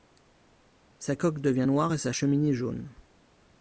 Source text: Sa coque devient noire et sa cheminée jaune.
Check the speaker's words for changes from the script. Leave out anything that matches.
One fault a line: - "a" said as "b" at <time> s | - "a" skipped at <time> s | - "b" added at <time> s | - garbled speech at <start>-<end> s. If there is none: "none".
none